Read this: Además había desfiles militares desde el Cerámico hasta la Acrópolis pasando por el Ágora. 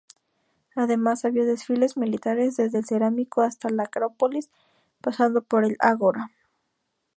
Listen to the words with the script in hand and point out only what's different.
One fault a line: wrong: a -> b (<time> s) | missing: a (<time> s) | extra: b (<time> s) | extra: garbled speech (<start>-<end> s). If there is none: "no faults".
no faults